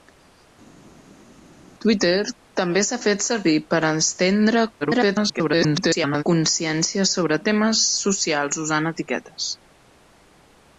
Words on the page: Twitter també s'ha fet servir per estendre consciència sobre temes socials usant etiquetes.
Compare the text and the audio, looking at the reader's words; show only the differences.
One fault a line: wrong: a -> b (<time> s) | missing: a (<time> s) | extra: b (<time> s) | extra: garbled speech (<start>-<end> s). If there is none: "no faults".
extra: garbled speech (4.8-6.2 s)